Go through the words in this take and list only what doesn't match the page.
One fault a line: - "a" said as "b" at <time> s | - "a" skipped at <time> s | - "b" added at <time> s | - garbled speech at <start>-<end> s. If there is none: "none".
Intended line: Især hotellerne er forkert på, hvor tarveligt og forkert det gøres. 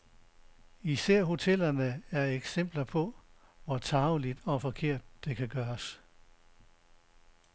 - "forkert" said as "eksempler" at 2.2 s
- "kan" added at 5.4 s